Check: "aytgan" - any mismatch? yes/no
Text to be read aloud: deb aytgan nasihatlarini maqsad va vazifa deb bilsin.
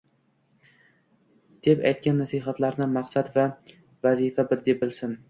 no